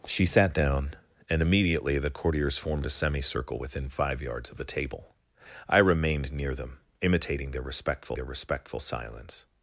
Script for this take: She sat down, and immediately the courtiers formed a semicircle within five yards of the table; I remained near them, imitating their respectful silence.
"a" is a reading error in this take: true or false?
false